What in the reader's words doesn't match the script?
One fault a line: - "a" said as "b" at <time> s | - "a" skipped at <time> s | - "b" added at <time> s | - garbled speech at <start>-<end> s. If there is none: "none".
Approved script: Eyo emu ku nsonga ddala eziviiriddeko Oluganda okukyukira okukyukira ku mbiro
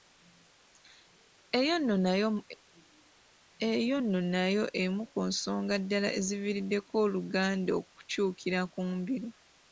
- "nno nayo" added at 4.0 s
- "okukyukira" skipped at 8.6 s